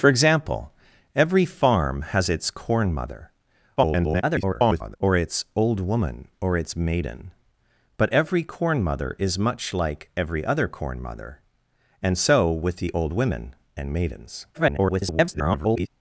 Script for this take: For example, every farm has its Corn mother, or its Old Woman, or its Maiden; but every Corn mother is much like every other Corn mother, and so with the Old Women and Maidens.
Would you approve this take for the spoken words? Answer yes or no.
no